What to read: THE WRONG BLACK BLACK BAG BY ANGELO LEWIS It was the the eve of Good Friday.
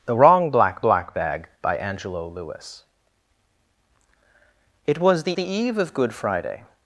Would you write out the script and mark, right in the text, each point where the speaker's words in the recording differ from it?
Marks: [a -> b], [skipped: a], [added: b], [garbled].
THE WRONG BLACK BLACK BAG BY ANGELO LEWIS It was the the eve of Good Friday.